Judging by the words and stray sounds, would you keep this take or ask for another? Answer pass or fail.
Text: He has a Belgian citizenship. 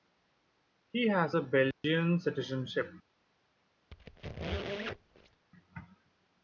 fail